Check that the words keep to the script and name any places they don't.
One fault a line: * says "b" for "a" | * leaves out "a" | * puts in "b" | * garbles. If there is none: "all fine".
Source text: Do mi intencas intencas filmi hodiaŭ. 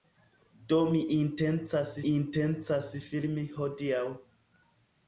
all fine